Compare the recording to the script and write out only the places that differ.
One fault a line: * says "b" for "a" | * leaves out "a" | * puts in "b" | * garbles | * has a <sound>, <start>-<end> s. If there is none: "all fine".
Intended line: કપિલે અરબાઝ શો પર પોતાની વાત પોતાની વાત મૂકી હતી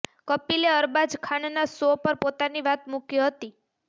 * puts in "ખાનના"
* leaves out "પોતાની વાત"